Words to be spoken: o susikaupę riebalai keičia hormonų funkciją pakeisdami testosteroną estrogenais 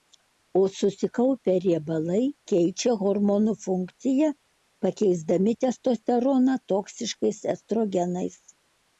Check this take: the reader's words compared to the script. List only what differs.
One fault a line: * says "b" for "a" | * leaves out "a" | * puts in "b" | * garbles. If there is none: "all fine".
* puts in "toksiškais"